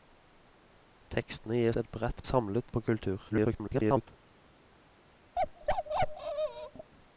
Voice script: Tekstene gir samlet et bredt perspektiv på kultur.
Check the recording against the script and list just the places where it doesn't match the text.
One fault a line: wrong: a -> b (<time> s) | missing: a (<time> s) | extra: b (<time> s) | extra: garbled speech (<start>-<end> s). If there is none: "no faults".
missing: samlet (1.8 s)
wrong: perspektiv -> samlet (2.3 s)
extra: garbled speech (3.3-4.1 s)